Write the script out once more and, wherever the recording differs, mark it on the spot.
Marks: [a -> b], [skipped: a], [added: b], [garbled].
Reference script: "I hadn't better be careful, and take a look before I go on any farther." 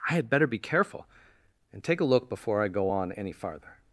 "I [hadn't -> had] better be careful, and take a look before I go on any farther."